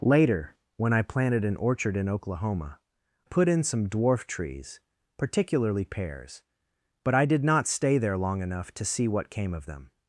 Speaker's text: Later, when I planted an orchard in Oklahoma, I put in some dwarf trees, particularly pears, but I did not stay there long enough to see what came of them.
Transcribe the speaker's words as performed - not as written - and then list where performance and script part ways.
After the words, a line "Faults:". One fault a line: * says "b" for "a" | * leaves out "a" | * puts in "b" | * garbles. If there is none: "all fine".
Later, when I planted an orchard in Oklahoma, put in some dwarf trees, particularly pears, but I did not stay there long enough to see what came of them.
Faults:
* leaves out "I"